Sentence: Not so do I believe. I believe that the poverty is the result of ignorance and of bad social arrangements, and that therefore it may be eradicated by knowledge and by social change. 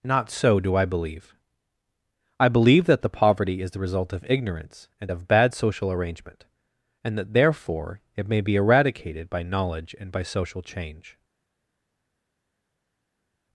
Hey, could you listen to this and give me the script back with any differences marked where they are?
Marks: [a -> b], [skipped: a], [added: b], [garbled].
Not so do I believe. I believe that the poverty is the result of ignorance and of bad social [arrangements, -> arrangement] and that therefore it may be eradicated by knowledge and by social change.